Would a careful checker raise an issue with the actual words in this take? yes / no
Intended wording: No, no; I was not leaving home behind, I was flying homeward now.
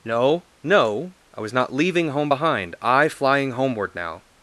yes